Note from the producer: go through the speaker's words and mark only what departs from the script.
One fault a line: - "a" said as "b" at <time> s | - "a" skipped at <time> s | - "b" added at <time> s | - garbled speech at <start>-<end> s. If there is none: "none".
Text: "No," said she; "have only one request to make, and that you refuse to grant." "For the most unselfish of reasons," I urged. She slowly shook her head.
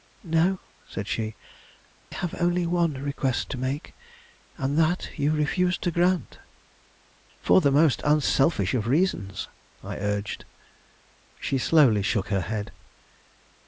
none